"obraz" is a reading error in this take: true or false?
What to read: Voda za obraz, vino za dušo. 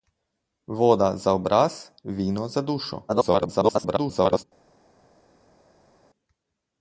false